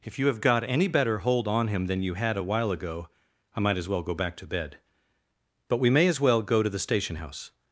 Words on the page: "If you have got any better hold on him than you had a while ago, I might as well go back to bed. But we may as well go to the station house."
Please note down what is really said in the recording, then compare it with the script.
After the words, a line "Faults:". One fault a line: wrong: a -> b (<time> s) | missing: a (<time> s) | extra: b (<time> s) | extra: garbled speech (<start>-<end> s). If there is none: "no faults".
"If you have got any better hold on him than you had a while ago, I might as well go back to bed. But we may as well go to the station house."
Faults:
no faults